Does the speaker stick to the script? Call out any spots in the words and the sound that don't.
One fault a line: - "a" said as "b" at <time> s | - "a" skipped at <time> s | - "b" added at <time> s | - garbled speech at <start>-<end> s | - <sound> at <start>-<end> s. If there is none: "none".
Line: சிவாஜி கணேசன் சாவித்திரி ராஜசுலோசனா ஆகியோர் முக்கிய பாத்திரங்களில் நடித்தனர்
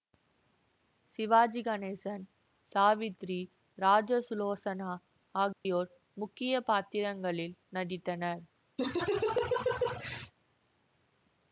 - dropout at 5.5-5.7 s
- laugh at 8.8-10.3 s